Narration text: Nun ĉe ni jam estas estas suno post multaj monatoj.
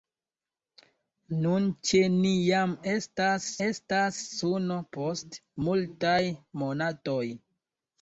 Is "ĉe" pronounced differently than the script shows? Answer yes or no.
no